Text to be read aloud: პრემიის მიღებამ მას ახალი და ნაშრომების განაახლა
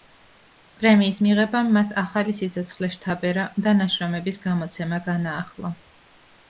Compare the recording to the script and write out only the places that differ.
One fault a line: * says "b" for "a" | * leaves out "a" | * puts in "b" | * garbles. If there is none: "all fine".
* puts in "სიცოცხლე შთაბერა"
* puts in "გამოცემა"